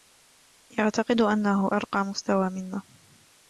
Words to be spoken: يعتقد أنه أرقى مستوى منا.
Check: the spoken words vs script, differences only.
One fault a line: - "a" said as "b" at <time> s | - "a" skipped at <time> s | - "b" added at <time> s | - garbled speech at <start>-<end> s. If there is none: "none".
none